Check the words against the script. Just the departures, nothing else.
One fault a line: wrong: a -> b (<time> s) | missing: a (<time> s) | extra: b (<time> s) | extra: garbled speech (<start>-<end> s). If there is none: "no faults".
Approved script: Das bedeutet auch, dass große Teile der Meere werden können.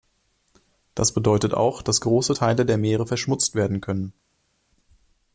extra: verschmutzt (3.0 s)